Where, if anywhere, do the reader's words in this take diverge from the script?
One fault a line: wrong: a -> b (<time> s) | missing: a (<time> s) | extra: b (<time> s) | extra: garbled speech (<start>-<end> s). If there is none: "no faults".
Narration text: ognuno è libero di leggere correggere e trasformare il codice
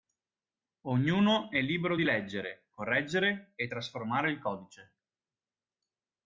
no faults